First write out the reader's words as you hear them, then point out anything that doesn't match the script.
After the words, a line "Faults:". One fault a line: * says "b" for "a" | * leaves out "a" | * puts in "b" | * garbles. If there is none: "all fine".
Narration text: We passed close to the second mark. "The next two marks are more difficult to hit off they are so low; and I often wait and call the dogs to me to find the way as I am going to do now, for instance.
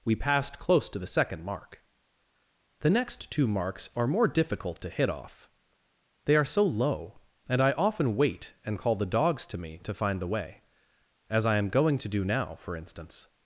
We passed close to the second mark. "The next two marks are more difficult to hit off they are so low; and I often wait and call the dogs to me to find the way as I am going to do now, for instance.
Faults:
all fine